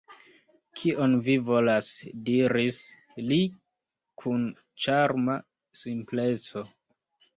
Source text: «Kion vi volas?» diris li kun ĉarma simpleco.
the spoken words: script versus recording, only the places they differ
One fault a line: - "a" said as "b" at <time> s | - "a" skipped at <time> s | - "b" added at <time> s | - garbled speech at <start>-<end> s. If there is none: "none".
none